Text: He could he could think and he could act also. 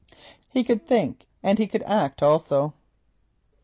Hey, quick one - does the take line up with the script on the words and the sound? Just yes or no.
no